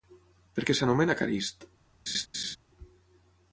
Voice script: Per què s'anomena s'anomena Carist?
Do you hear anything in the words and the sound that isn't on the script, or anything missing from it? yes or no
yes